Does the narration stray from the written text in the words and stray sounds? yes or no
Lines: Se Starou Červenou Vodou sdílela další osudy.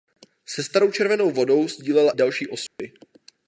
yes